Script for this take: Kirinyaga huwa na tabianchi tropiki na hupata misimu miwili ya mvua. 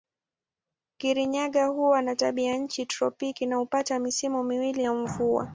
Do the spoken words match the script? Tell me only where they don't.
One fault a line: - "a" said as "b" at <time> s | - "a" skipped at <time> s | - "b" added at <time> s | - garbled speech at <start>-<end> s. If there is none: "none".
none